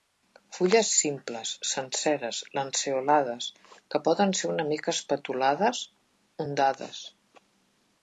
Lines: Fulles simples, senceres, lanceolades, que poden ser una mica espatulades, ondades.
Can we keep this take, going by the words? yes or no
yes